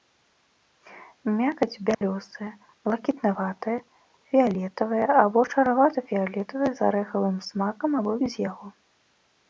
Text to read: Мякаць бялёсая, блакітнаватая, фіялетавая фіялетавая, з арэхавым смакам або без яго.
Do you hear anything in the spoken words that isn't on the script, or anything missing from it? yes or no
yes